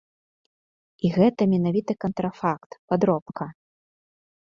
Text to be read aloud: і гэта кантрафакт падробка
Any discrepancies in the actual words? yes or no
yes